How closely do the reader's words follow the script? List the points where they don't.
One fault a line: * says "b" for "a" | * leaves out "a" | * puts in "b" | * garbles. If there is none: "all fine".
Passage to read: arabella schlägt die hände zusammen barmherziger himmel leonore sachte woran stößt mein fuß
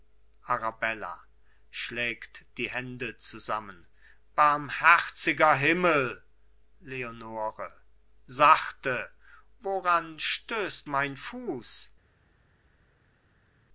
all fine